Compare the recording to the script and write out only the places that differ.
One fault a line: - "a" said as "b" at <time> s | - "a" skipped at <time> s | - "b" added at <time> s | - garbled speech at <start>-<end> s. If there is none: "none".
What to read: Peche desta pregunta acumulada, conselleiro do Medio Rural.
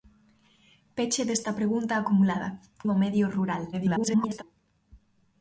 - "conselleiro" skipped at 2.5 s
- garbled speech at 3.7-4.4 s